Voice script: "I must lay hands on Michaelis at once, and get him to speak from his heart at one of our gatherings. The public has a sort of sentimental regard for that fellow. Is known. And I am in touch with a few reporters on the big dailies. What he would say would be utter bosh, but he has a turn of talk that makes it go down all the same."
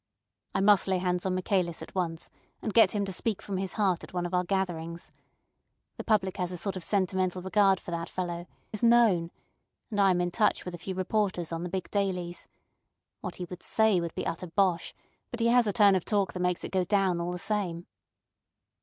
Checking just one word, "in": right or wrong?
right